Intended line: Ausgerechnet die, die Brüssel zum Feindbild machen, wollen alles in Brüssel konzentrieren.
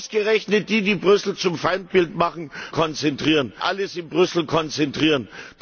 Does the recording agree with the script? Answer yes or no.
no